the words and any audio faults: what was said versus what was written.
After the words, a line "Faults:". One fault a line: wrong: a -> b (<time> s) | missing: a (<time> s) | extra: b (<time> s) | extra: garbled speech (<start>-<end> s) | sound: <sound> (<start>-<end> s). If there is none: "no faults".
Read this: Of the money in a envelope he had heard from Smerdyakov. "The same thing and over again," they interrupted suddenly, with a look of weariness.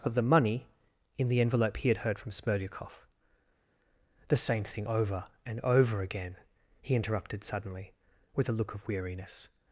Of the money in the envelope he had heard from Smerdyakov. "The same thing over and over again," he interrupted suddenly, with a look of weariness.
Faults:
wrong: a -> the (1.3 s)
extra: over (4.9 s)
wrong: they -> he (6.8 s)